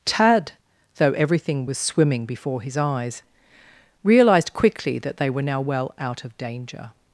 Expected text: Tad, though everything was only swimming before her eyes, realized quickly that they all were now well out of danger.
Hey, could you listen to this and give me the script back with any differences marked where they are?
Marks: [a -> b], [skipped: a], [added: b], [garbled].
Tad, though everything was [skipped: only] swimming before [her -> his] eyes, realized quickly that they [skipped: all] were now well out of danger.